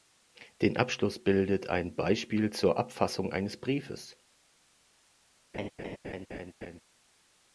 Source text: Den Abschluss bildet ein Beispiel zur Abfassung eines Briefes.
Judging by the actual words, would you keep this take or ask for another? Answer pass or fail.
pass